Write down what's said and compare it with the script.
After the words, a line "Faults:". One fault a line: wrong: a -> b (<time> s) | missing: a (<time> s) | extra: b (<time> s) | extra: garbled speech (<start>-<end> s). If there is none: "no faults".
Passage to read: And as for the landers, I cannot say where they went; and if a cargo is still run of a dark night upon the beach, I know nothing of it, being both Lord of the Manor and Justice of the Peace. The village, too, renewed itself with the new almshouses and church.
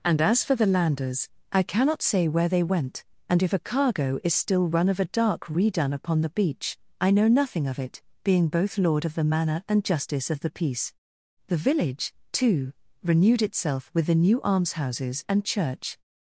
And as for the landers, I cannot say where they went; and if a cargo is still run of a dark redone upon the beach, I know nothing of it, being both Lord of the Manor and Justice of the Peace. The village, too, renewed itself with the new almshouses and church.
Faults:
wrong: night -> redone (5.5 s)